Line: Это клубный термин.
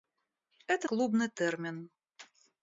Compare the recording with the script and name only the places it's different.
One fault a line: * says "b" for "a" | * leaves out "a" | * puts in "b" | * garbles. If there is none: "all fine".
all fine